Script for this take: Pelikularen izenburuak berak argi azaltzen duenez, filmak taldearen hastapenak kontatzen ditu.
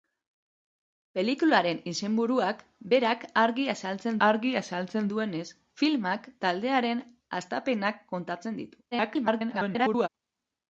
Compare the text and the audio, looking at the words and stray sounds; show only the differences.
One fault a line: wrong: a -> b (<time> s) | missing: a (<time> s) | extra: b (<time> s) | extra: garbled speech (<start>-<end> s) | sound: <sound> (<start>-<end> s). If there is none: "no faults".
extra: argi azaltzen (4.3 s)
extra: garbled speech (8.9-10.1 s)